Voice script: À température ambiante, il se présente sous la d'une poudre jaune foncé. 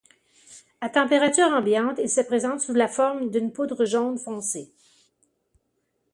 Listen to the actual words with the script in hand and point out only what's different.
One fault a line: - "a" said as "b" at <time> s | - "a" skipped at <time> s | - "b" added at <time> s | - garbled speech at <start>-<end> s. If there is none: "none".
- "forme" added at 2.9 s